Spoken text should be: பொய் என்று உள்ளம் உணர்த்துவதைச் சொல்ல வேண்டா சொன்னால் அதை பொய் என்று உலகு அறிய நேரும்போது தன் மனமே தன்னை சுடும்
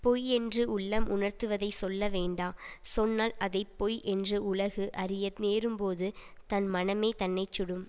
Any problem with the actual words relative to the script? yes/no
no